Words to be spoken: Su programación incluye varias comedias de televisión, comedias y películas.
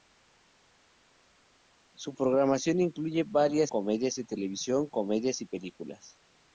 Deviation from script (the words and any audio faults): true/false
false